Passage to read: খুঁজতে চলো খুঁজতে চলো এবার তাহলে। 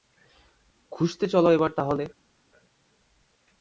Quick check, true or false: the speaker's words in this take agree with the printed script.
false